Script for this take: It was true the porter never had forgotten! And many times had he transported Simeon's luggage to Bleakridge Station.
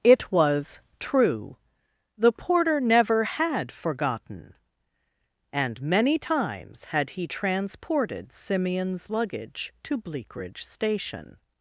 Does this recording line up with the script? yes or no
yes